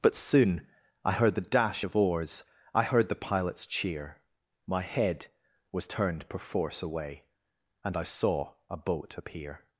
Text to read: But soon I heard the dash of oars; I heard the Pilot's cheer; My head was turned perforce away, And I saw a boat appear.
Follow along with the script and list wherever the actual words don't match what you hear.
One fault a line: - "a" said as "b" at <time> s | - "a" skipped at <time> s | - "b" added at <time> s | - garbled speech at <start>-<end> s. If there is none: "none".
none